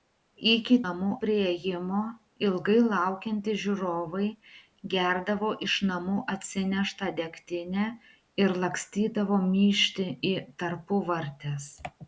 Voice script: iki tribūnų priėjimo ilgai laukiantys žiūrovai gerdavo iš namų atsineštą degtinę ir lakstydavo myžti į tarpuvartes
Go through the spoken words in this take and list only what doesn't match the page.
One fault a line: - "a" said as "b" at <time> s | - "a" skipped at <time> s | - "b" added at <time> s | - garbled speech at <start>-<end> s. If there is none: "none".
- "tribūnų" said as "namų" at 0.9 s